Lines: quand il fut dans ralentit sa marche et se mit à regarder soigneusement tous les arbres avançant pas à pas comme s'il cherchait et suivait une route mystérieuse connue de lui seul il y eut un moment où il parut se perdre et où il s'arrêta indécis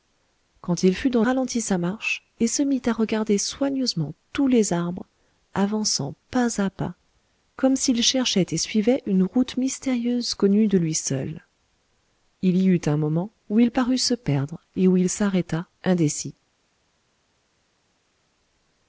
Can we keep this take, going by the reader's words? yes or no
yes